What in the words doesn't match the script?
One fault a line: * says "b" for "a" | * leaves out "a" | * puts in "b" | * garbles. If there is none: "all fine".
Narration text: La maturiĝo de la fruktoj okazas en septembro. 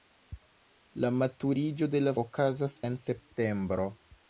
* leaves out "fruktoj"